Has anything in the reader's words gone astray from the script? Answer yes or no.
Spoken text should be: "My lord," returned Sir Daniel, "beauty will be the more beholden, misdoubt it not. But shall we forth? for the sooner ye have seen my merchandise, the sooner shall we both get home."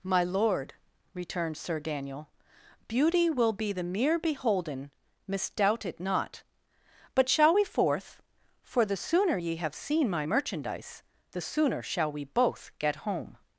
yes